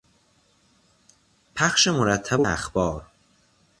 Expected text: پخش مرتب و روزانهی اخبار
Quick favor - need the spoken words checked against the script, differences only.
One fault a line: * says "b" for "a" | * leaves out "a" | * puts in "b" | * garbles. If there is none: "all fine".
* leaves out "روزانهی"